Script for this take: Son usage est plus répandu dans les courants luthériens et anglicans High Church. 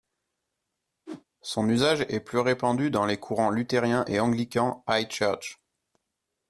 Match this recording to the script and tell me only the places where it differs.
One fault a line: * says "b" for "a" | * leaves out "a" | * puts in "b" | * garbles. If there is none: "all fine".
all fine